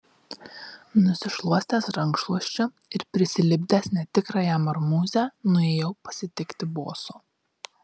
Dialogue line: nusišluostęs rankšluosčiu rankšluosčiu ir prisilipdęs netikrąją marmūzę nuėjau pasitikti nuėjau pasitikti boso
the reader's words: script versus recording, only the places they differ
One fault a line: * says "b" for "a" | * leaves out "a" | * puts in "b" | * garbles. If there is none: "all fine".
* leaves out "rankšluosčiu"
* leaves out "nuėjau pasitikti"